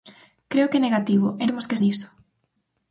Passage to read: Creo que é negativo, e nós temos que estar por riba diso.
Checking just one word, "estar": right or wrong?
wrong